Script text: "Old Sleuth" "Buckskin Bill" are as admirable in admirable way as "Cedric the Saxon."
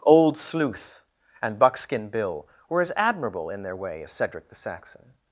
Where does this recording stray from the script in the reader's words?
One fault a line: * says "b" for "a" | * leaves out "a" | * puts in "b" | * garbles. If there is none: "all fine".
* puts in "and"
* says "were" for "are"
* says "their" for "admirable"